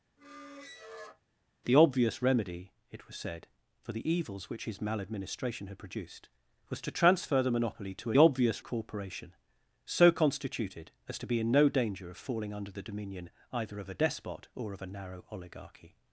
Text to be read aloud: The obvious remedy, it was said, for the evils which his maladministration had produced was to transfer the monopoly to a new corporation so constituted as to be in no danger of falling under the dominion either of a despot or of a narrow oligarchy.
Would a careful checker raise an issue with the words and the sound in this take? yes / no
yes